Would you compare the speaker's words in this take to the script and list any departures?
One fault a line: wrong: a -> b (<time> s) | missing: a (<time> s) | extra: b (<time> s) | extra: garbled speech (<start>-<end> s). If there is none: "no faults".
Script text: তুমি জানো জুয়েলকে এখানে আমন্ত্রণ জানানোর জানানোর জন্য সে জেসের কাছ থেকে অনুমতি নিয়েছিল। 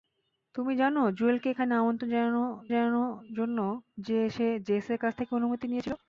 no faults